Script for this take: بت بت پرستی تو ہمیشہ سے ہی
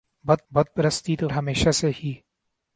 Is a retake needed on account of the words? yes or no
no